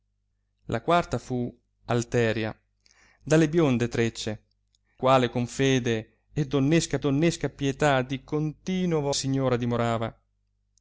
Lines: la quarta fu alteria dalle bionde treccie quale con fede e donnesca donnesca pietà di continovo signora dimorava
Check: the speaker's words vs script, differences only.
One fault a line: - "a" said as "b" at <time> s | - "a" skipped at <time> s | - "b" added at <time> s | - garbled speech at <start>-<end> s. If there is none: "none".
none